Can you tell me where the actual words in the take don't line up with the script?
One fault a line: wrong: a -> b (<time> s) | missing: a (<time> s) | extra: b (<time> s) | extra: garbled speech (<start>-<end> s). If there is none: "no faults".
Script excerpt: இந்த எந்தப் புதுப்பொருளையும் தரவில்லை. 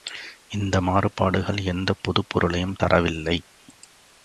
extra: மாறுபாடுகள் (0.8 s)